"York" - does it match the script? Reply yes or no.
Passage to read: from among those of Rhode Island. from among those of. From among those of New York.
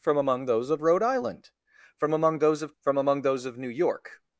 yes